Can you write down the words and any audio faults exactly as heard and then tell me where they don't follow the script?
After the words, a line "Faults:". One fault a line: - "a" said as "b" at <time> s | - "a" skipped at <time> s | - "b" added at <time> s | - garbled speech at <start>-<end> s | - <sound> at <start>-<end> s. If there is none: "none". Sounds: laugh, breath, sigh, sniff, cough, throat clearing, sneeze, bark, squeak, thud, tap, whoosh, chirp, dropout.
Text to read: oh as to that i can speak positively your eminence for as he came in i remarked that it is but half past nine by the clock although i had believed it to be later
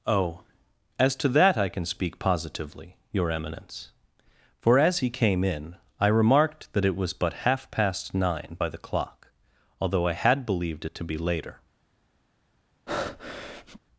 oh as to that i can speak positively your eminence for as he came in i remarked that it was but half past nine by the clock although i had believed it to be later
Faults:
- "is" said as "was" at 7.0 s
- breath at 12.9-13.8 s